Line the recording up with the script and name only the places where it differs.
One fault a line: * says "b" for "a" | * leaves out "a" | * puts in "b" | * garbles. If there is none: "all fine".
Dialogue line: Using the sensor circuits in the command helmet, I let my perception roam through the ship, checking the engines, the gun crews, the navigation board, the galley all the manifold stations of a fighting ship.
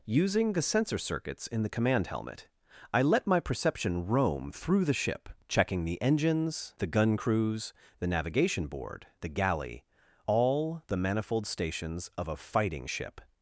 all fine